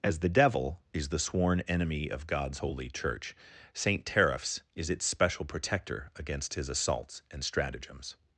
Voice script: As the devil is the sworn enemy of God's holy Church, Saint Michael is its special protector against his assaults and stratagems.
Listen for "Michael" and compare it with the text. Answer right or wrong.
wrong